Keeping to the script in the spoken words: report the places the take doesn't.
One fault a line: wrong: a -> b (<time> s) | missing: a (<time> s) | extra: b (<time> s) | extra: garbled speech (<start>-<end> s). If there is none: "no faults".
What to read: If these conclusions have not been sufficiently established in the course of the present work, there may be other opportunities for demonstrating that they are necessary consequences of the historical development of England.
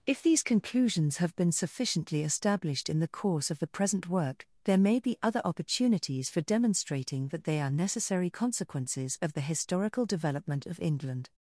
missing: not (1.3 s)